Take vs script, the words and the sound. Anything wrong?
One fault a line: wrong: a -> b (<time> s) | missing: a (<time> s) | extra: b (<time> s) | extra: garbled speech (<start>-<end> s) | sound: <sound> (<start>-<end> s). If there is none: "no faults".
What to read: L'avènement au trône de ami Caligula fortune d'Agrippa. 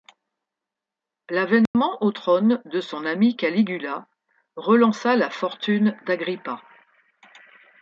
sound: dropout (1.7-1.7 s)
extra: son (2.8 s)
extra: relança la (4.6 s)